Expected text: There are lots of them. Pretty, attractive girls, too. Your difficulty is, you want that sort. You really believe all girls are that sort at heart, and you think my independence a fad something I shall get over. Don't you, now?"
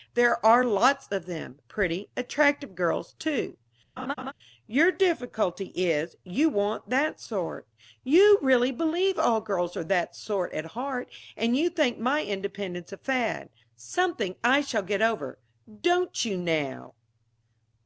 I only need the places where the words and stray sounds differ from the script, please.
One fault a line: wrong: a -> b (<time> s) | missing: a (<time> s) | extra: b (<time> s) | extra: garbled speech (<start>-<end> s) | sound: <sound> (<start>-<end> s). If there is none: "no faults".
sound: laugh (4.0-4.3 s)